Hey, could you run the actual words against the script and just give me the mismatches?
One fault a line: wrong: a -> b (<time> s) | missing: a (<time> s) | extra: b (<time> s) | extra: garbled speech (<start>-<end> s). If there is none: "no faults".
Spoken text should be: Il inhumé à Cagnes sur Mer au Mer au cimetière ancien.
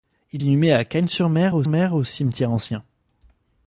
no faults